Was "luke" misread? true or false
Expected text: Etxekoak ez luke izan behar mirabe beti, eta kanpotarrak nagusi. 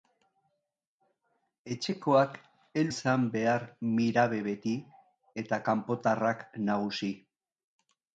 true